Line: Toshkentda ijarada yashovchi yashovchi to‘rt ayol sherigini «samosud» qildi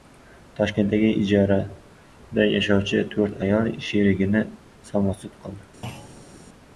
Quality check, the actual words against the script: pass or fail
fail